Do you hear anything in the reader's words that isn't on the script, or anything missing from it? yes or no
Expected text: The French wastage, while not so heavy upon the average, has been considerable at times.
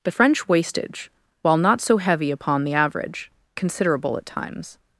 yes